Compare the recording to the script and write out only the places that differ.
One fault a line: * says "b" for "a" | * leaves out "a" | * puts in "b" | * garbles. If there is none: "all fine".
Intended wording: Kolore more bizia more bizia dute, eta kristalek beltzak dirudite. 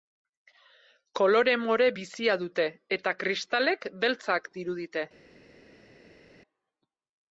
* leaves out "more bizia"